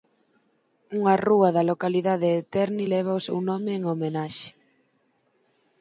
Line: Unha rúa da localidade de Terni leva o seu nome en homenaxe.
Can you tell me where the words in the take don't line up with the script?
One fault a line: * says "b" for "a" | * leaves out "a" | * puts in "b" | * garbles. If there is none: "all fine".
all fine